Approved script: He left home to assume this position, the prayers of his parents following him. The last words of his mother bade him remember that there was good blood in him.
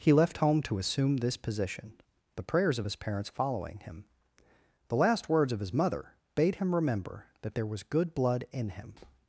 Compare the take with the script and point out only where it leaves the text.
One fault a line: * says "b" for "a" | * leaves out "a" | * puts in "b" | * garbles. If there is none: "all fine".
all fine